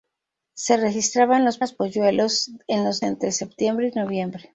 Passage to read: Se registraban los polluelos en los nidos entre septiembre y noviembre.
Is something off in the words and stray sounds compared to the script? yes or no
yes